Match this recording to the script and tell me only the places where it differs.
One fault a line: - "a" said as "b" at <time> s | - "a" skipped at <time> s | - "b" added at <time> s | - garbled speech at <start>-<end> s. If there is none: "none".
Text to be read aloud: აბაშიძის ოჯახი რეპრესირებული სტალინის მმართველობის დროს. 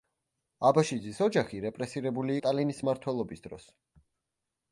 none